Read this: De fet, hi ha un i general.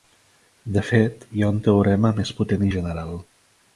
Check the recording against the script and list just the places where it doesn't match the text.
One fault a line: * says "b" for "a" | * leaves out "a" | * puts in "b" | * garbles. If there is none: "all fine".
* puts in "teorema més potent"